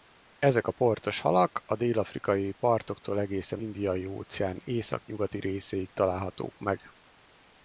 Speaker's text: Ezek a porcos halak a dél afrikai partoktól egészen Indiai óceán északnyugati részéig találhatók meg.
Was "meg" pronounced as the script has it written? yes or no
yes